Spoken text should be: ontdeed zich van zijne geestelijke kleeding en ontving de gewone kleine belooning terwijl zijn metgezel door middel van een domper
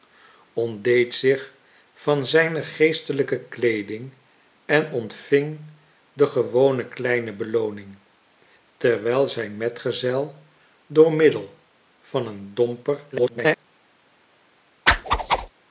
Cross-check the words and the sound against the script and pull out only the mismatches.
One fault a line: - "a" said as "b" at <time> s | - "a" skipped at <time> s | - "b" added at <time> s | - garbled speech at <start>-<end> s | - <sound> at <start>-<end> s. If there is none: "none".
- garbled speech at 13.1-13.6 s
- whoosh at 14.9-15.5 s